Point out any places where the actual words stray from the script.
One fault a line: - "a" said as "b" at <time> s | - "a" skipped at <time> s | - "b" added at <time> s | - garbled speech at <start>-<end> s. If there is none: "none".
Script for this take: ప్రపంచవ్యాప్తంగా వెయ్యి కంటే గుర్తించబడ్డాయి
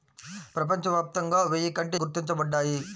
none